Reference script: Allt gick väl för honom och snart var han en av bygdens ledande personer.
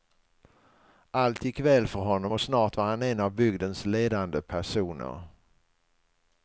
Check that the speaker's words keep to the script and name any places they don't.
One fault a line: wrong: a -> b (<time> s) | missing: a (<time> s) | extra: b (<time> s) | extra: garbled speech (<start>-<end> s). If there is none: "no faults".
no faults